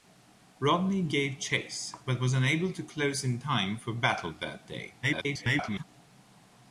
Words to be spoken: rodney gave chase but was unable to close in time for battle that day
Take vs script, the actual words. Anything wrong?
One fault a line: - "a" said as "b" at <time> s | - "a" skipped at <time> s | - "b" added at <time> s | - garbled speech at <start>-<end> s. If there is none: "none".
- garbled speech at 5.0-5.8 s